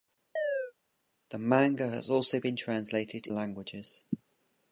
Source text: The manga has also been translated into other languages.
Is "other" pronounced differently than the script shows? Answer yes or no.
yes